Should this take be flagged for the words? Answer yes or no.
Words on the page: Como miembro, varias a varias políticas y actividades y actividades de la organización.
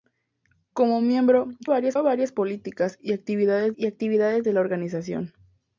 no